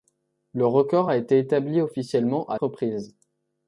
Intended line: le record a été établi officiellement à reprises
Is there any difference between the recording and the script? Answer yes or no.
no